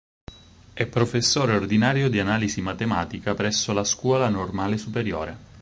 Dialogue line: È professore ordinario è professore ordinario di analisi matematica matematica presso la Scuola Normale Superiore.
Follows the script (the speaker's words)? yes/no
no